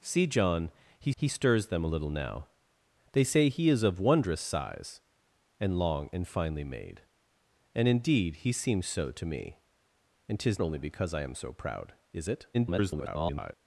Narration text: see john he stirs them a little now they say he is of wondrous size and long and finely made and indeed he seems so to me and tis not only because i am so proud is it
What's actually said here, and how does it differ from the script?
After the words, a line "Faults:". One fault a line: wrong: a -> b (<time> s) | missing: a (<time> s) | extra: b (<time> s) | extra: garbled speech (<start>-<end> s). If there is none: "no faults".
see john he he stirs them a little now they say he is of wondrous size and long and finely made and indeed he seems so to me and tis only because i am so proud is it [garbled]
Faults:
extra: he (1.2 s)
missing: not (10.6 s)
extra: garbled speech (12.5-13.5 s)